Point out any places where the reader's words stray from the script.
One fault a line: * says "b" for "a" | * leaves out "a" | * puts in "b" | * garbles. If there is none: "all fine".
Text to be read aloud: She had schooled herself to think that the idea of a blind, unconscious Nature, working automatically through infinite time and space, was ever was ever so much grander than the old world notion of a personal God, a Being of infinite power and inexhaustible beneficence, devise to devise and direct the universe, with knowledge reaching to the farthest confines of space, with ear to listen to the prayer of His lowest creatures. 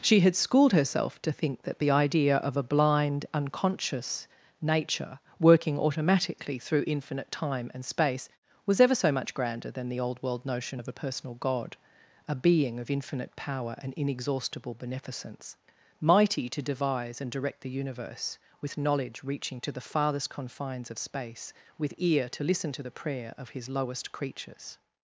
* leaves out "was ever"
* says "mighty" for "devise"